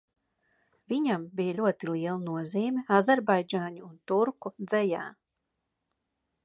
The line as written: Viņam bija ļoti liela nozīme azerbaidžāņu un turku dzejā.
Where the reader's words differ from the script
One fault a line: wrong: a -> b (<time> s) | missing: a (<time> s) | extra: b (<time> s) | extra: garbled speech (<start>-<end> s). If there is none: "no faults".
no faults